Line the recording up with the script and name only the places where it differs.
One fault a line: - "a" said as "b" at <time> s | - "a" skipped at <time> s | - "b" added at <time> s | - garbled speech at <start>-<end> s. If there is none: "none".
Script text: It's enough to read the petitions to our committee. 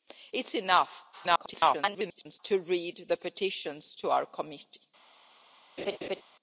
- garbled speech at 1.1-2.4 s